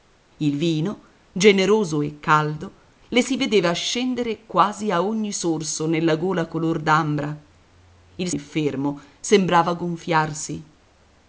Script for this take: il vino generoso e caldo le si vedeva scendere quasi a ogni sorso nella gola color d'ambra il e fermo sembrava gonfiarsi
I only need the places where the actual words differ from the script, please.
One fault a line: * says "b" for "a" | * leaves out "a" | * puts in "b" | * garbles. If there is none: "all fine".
all fine